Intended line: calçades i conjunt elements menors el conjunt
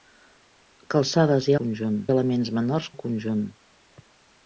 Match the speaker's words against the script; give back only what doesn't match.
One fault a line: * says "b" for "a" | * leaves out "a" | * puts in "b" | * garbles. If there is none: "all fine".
all fine